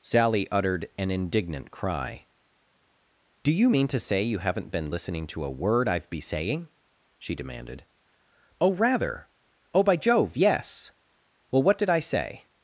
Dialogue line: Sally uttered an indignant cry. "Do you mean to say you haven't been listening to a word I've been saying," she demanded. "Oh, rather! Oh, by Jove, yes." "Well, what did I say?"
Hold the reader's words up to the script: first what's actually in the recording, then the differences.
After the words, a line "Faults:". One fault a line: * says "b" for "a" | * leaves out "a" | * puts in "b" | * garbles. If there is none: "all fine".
Sally uttered an indignant cry. "Do you mean to say you haven't been listening to a word I've be saying," she demanded. "Oh, rather! Oh, by Jove, yes." "Well, what did I say?"
Faults:
* says "be" for "been"